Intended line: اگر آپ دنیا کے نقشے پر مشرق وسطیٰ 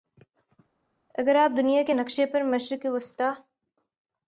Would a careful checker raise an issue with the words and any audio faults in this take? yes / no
no